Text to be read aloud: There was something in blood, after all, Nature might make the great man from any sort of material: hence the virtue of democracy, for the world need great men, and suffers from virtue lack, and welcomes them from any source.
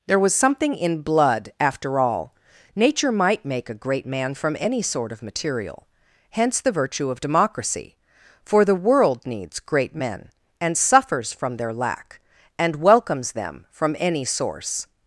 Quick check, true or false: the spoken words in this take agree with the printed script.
false